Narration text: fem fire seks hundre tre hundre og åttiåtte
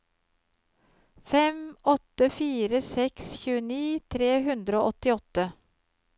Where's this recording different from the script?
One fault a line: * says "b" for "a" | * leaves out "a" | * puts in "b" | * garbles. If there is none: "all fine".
* puts in "åtte"
* says "tjueni" for "hundre"